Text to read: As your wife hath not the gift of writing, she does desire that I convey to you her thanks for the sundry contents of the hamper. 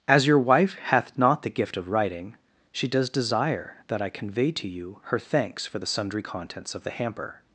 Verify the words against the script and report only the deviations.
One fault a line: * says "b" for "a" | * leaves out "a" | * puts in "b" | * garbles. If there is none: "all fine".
all fine